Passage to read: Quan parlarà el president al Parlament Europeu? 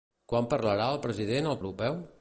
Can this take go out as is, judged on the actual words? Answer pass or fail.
fail